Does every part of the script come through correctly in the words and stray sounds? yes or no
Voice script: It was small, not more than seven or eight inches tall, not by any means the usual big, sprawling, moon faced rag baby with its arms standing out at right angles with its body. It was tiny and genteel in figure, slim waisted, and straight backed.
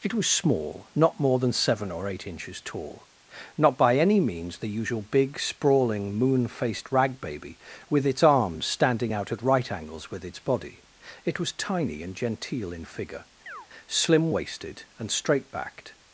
no